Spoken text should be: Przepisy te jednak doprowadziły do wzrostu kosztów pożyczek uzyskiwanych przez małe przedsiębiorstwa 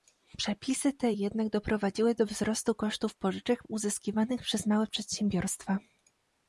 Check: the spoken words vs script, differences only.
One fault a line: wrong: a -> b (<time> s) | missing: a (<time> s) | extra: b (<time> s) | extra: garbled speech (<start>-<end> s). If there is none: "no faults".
no faults